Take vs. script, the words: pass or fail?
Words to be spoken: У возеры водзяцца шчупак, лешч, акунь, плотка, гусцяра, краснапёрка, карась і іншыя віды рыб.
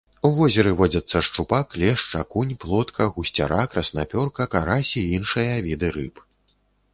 pass